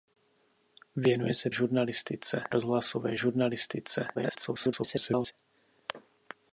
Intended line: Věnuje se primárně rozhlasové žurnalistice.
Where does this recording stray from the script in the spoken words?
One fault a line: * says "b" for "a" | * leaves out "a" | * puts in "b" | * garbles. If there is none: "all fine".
* says "žurnalistice" for "primárně"
* garbles